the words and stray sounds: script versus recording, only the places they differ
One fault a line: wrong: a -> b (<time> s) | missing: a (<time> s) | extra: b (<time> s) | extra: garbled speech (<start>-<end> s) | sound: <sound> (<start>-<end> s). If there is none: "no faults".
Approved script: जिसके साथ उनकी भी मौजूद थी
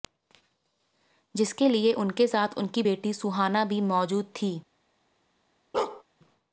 extra: लिए उनके (1.7 s)
extra: बेटी सुहाना (2.8 s)
sound: bark (5.7-6.0 s)